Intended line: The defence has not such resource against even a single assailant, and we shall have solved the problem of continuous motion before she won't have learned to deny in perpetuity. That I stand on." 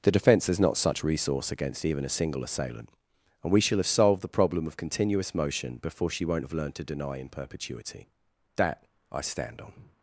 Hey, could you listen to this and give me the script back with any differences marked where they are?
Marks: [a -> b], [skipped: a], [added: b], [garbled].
The defence has not such resource against even a single assailant, and we shall have solved the problem of continuous motion before she won't have learned to deny in perpetuity. That I stand on."